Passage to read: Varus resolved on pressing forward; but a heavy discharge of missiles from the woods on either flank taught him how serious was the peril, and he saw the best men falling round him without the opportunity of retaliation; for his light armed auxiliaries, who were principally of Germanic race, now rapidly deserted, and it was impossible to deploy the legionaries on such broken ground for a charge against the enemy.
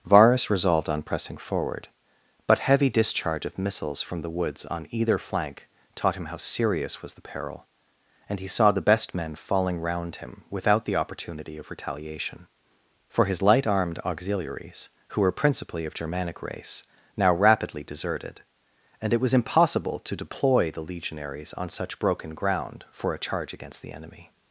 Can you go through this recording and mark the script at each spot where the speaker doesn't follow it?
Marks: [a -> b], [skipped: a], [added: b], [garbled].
Varus resolved on pressing forward; but [skipped: a] heavy discharge of missiles from the woods on either flank taught him how serious was the peril, and he saw the best men falling round him without the opportunity of retaliation; for his light armed auxiliaries, who were principally of Germanic race, now rapidly deserted, and it was impossible to deploy the legionaries on such broken ground for a charge against the enemy.